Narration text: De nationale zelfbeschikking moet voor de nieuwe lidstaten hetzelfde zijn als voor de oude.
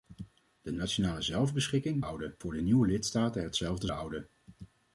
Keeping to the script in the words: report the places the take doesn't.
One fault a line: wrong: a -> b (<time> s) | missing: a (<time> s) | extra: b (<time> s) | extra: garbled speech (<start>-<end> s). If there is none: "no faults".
wrong: moet -> oude (2.0 s)
missing: zijn als voor (3.9 s)